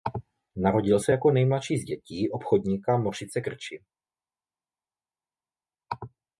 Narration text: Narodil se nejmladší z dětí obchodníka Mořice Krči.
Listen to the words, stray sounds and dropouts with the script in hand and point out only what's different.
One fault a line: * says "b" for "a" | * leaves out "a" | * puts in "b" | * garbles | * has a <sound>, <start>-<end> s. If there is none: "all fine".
* puts in "jako"